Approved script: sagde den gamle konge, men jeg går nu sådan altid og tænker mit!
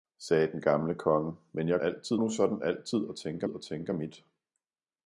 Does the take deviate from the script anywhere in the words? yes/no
yes